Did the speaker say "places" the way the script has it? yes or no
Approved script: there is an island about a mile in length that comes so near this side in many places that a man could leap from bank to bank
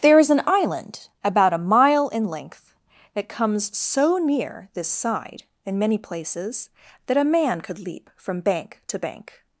yes